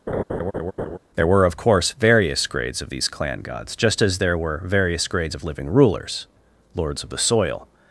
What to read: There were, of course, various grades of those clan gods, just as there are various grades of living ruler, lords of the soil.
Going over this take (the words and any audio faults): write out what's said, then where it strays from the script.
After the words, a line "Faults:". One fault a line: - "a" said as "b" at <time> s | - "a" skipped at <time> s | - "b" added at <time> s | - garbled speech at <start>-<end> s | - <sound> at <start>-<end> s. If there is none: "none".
There were, of course, various grades of these clan gods, just as there were various grades of living rulers, lords of the soil.
Faults:
- laugh at 0.1-1.0 s
- "those" said as "these" at 2.9 s
- "are" said as "were" at 4.4 s
- "ruler" said as "rulers" at 5.7 s